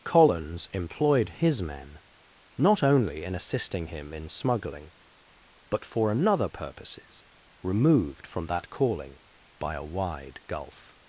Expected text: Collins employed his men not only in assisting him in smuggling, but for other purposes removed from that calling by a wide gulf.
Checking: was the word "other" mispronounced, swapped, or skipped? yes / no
yes